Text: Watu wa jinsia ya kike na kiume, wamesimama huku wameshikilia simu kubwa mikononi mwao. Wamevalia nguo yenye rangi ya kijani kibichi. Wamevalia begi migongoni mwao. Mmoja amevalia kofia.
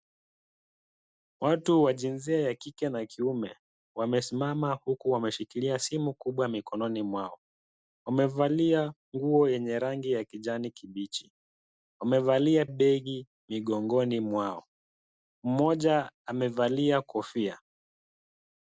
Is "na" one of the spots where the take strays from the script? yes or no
no